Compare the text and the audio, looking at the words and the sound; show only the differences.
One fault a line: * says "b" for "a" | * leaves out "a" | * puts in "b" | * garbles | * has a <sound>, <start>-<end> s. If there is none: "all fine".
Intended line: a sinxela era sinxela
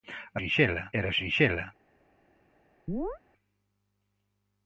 * has a chirp, 2.9-3.2 s